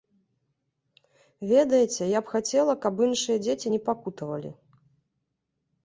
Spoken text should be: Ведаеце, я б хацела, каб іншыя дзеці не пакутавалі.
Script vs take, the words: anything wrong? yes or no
no